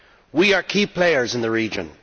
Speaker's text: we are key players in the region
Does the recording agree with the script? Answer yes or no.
yes